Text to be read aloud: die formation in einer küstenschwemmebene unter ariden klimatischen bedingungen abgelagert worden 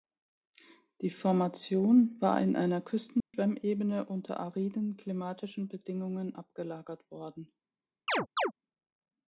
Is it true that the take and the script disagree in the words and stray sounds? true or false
true